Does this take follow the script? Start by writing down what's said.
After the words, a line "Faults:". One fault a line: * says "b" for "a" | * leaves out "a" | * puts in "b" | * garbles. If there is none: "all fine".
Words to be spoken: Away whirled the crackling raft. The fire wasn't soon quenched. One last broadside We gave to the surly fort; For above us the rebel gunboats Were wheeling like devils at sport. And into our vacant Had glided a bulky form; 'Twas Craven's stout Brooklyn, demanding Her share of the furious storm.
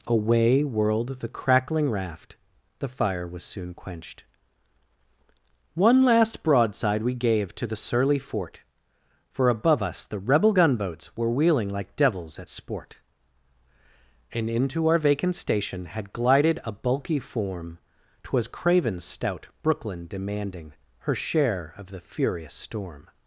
Away whirled the crackling raft. The fire was soon quenched. One last broadside We gave to the surly fort; For above us the rebel gunboats Were wheeling like devils at sport. And into our vacant station Had glided a bulky form; 'Twas Craven's stout Brooklyn, demanding Her share of the furious storm.
Faults:
* says "was" for "wasn't"
* puts in "station"